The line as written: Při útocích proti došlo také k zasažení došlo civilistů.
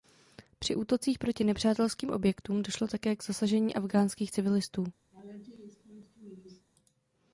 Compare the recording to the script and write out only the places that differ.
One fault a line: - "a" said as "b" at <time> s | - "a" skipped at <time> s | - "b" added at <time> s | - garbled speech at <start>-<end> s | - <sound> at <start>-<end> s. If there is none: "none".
- "nepřátelským objektům" added at 1.4 s
- "došlo" said as "afghánských" at 3.8 s
- laugh at 5.1-6.7 s